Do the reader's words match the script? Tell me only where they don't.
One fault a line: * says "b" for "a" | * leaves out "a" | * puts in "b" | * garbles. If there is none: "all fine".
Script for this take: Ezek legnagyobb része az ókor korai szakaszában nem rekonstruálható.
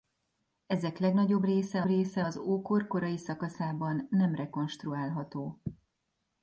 * puts in "része"